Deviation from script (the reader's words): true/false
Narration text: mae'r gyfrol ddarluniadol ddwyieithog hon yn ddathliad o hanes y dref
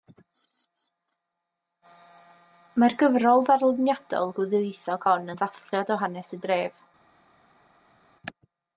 false